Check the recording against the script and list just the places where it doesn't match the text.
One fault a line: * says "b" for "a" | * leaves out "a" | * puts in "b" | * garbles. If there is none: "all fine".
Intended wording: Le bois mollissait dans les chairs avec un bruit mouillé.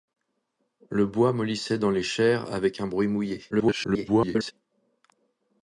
* garbles